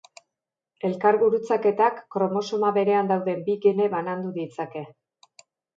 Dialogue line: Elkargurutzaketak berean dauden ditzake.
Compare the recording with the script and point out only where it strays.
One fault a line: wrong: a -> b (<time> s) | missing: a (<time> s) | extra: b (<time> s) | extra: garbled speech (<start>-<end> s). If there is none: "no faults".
extra: kromosoma (2.2 s)
extra: bi gene banandu (3.5 s)